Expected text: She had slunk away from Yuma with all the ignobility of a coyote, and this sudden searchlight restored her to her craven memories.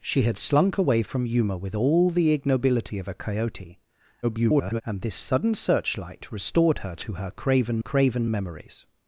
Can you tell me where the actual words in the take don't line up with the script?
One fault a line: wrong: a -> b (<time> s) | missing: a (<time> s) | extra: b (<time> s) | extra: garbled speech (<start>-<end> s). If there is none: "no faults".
extra: garbled speech (4.2-4.8 s)
extra: craven (7.8 s)